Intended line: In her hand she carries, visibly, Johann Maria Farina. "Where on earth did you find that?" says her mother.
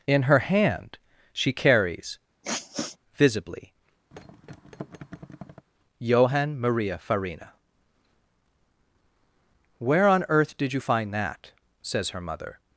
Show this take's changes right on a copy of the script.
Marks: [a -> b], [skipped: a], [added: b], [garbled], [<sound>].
In her hand she carries, [sniff] visibly, [thud] Johann Maria Farina. "Where on earth did you find that?" says her mother.